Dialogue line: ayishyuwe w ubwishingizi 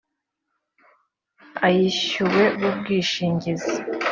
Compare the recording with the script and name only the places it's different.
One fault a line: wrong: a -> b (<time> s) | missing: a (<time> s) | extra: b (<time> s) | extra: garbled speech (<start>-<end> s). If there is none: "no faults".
no faults